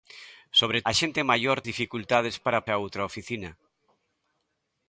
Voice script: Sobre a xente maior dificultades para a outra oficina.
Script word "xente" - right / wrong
right